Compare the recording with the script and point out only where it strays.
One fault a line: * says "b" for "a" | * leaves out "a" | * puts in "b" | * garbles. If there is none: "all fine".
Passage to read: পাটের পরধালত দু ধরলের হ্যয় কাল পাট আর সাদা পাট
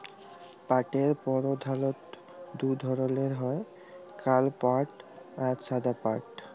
all fine